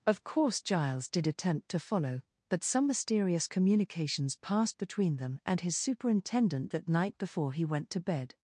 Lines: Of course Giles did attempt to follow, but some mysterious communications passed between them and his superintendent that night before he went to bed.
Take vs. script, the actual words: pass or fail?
pass